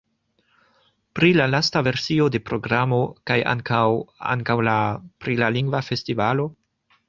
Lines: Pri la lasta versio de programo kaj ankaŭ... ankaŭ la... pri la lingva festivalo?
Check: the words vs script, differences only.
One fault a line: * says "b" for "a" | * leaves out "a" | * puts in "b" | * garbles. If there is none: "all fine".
all fine